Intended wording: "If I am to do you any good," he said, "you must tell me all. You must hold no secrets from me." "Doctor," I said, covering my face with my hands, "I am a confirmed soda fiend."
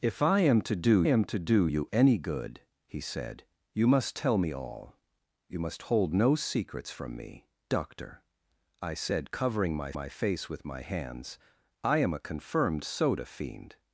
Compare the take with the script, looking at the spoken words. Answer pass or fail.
fail